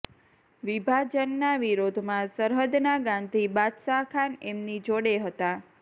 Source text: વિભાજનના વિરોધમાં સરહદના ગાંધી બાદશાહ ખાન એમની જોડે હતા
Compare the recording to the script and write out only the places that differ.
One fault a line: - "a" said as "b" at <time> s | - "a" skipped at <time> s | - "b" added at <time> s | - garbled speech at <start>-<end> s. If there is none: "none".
none